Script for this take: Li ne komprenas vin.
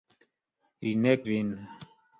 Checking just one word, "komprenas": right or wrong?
wrong